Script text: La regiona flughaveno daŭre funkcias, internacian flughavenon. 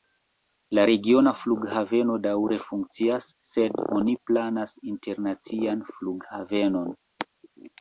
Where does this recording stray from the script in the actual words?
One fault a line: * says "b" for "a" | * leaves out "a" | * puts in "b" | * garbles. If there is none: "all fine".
* puts in "sed oni planas"